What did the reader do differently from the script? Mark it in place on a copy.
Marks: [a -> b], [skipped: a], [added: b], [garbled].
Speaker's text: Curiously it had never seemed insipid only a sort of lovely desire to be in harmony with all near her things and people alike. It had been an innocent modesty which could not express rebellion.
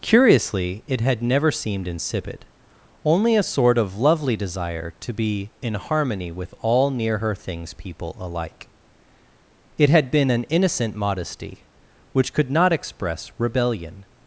Curiously it had never seemed insipid only a sort of lovely desire to be in harmony with all near her things [skipped: and] people alike. It had been an innocent modesty which could not express rebellion.